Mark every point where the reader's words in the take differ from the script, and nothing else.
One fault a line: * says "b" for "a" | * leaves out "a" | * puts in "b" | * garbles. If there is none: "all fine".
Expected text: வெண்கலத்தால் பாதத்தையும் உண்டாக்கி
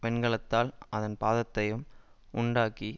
* puts in "அதன்"